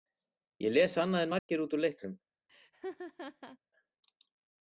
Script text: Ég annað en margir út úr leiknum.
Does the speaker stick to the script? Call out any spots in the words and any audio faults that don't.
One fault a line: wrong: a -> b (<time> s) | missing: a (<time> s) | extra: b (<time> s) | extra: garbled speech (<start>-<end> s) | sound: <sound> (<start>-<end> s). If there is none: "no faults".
extra: les (0.8 s)
sound: dropout (1.4-1.5 s)
sound: laugh (2.5-3.6 s)